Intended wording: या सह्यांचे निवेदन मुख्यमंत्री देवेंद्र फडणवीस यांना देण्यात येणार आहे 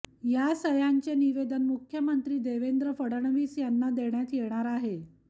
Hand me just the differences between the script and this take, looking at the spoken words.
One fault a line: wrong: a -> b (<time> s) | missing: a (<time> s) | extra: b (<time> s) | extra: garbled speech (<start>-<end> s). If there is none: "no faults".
no faults